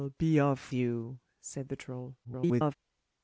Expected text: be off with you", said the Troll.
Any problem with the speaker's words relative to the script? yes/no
yes